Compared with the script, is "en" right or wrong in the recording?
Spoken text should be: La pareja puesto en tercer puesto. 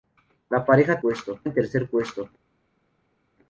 right